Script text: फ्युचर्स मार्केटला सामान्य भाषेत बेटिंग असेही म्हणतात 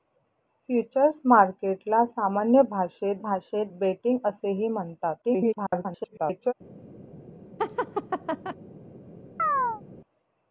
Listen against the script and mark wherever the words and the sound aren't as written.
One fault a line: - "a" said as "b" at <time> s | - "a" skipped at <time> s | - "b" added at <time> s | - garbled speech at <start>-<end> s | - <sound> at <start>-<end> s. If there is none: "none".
- "भाषेत" added at 3.2 s
- garbled speech at 5.2-6.5 s
- laugh at 7.6-8.6 s
- chirp at 9.4-9.8 s